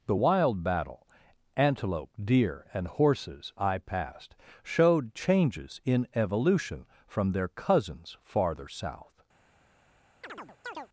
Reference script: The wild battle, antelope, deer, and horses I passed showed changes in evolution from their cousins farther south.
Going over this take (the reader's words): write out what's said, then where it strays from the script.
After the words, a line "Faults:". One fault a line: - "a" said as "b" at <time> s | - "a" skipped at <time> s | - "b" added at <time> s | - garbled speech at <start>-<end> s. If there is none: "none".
The wild battle, antelope, deer, and horses I passed showed changes in evolution from their cousins farther south.
Faults:
none